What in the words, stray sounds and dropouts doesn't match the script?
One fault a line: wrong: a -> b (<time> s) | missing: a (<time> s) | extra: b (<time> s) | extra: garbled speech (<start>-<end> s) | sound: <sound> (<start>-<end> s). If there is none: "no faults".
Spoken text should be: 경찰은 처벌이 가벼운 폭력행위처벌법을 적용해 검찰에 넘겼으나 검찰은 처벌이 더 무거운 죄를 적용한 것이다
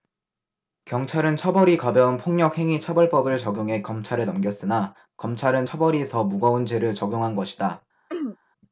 sound: throat clearing (8.1-8.4 s)